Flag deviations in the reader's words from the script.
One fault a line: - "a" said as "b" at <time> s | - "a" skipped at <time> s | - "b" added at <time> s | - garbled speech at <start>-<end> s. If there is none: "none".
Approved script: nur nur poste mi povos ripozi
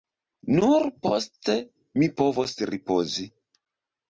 - "nur" skipped at 0.8 s